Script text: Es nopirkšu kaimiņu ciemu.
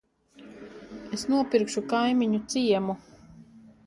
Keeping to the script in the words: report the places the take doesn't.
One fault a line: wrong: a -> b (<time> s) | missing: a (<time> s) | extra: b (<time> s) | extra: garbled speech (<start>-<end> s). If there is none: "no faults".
no faults